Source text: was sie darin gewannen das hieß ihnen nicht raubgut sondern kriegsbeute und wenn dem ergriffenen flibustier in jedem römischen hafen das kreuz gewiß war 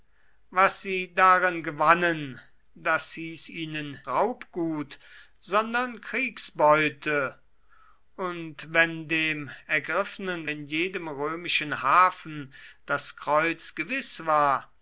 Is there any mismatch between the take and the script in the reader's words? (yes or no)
yes